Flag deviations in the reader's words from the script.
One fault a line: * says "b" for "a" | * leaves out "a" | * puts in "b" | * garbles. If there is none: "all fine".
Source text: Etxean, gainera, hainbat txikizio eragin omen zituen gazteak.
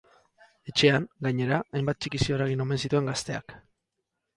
all fine